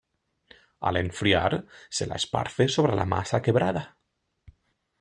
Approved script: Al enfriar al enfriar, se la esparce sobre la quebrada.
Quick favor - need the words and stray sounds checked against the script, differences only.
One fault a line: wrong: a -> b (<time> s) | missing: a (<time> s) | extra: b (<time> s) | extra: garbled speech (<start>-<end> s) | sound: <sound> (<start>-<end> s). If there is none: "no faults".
missing: al enfriar (1.7 s)
extra: masa (3.0 s)